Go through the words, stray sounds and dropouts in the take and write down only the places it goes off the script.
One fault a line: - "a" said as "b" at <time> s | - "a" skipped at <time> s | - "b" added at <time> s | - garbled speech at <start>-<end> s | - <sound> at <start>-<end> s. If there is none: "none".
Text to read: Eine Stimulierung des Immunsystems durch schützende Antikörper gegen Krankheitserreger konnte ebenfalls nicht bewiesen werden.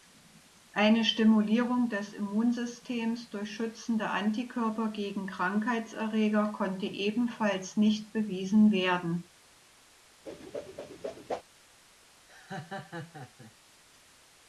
- whoosh at 10.3-11.4 s
- laugh at 12.3-13.5 s